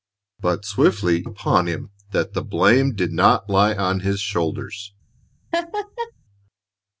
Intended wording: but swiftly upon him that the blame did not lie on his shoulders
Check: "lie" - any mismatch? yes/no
no